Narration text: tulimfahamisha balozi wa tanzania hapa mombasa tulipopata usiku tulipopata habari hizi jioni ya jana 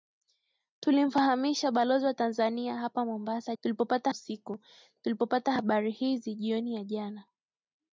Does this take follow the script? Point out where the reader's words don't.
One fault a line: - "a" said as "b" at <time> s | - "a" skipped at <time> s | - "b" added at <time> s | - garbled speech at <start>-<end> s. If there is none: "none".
none